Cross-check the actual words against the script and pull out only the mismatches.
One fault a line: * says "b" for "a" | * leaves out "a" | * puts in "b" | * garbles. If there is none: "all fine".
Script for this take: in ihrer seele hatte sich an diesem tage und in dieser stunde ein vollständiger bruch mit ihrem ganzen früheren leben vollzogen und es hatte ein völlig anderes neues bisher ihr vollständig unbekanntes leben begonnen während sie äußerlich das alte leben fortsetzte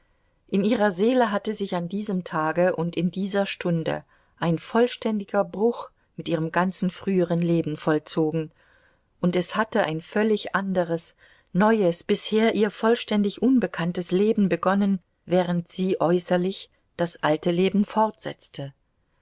all fine